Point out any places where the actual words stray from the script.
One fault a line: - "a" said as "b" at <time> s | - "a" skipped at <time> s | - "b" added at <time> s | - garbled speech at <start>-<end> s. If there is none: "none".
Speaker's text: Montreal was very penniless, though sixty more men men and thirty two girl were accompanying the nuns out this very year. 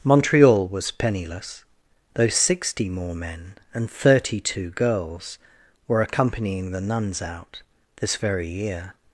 - "very" skipped at 0.9 s
- "men" skipped at 3.6 s
- "girl" said as "girls" at 4.7 s